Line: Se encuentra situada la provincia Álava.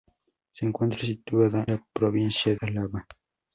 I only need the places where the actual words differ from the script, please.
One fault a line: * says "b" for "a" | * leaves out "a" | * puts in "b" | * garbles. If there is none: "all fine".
all fine